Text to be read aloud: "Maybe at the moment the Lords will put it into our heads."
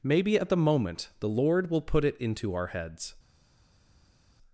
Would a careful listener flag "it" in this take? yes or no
no